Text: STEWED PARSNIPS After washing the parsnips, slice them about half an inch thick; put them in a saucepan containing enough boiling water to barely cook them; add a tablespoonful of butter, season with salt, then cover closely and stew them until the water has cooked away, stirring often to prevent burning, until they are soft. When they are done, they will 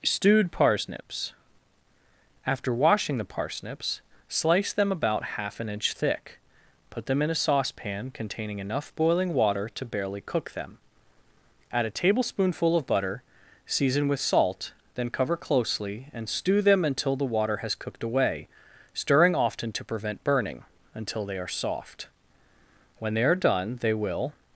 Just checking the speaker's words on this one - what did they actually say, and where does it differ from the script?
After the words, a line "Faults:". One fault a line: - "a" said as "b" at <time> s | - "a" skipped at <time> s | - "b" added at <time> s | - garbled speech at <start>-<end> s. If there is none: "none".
STEWED PARSNIPS After washing the parsnips, slice them about half an inch thick; put them in a saucepan containing enough boiling water to barely cook them; add a tablespoonful of butter, season with salt, then cover closely and stew them until the water has cooked away, stirring often to prevent burning, until they are soft. When they are done, they will
Faults:
none